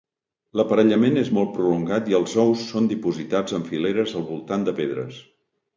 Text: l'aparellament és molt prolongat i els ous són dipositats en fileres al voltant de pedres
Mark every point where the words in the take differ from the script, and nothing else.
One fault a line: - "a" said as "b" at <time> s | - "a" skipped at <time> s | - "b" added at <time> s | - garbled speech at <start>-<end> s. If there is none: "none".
none